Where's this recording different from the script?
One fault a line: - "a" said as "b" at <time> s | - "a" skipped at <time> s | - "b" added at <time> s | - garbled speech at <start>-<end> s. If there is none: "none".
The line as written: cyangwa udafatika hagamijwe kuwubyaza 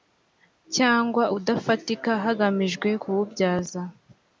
none